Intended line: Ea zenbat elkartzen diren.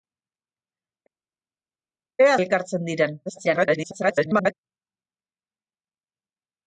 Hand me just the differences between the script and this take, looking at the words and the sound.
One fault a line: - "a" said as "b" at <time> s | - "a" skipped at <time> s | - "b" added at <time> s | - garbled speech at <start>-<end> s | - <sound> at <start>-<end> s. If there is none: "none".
- "zenbat" skipped at 2.4 s
- garbled speech at 3.3-4.5 s